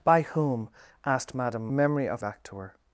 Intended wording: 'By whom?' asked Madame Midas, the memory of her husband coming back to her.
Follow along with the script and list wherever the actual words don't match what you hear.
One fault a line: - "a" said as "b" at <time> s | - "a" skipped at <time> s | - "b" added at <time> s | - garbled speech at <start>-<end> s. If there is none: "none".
- "Midas the" skipped at 1.7 s
- "her husband coming" skipped at 2.2 s